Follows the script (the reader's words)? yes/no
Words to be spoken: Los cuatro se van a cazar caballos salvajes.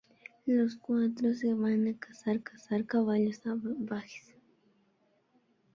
no